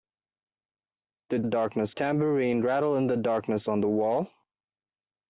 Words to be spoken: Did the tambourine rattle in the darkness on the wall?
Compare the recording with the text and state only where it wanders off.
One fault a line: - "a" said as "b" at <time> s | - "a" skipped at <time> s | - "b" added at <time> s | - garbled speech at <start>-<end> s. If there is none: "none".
- "the" said as "darkness" at 1.4 s